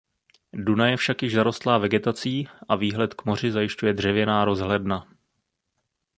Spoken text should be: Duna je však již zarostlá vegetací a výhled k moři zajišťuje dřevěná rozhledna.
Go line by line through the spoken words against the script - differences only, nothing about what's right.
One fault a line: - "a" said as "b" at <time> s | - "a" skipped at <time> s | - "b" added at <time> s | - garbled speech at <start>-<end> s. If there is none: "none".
none